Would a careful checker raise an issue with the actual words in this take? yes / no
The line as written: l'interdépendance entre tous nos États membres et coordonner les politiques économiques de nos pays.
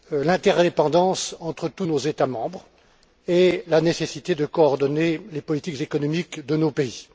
yes